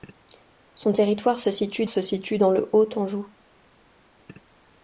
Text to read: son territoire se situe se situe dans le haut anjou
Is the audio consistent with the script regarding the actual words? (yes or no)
yes